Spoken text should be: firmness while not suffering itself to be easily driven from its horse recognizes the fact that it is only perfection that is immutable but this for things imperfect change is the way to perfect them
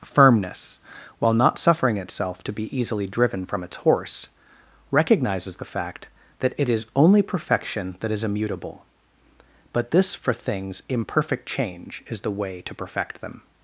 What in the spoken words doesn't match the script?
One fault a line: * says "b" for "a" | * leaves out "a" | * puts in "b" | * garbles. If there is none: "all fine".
all fine